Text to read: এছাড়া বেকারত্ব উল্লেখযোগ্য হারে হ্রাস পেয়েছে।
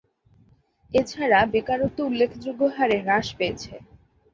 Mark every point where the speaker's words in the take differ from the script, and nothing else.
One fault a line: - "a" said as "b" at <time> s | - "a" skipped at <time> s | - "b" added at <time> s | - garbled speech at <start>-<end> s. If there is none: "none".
none